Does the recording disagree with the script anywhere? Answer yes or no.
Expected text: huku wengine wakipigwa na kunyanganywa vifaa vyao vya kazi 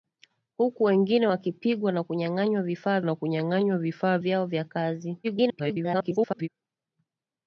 yes